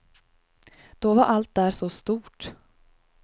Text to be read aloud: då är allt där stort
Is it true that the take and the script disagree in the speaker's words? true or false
true